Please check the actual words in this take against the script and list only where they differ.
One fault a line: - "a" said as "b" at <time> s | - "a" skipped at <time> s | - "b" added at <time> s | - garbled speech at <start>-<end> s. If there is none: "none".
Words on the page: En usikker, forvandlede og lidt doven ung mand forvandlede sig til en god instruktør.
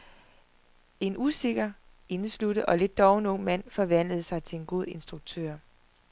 - "forvandlede" said as "indesluttet" at 2.1 s